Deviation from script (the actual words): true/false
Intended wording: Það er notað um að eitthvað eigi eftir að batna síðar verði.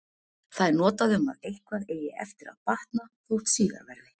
true